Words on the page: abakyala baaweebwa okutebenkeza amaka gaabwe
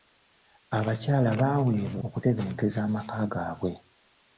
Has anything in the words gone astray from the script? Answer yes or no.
no